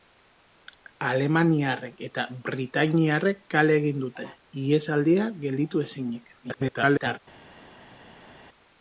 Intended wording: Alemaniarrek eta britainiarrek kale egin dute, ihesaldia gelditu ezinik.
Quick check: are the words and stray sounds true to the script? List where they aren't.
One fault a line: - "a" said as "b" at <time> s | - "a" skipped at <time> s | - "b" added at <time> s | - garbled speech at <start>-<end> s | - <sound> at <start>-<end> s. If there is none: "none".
- garbled speech at 6.4-7.2 s